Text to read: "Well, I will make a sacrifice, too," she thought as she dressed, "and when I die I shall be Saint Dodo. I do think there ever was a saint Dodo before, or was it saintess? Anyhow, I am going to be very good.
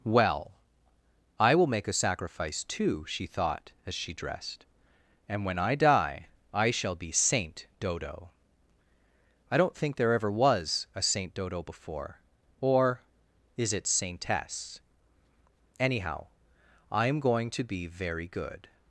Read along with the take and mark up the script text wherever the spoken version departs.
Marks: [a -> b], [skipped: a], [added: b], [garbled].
"Well, I will make a sacrifice, too," she thought as she dressed, "and when I die I shall be Saint Dodo. I [do -> don't] think there ever was a saint Dodo before, or [was -> is] it saintess? Anyhow, I am going to be very good.